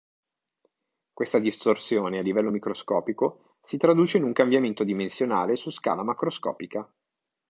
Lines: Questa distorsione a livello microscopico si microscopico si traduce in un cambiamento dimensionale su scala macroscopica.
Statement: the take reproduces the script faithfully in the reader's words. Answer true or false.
false